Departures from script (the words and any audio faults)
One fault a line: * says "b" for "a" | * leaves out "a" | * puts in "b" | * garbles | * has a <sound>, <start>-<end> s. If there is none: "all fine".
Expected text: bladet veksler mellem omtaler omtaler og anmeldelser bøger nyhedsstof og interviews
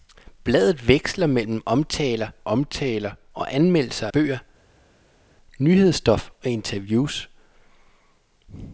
all fine